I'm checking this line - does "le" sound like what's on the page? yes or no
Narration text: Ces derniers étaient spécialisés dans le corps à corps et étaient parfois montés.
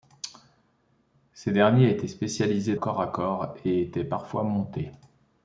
no